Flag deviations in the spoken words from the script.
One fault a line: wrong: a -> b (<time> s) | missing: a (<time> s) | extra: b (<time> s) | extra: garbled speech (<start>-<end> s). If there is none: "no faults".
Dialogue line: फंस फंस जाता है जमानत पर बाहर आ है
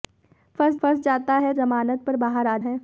no faults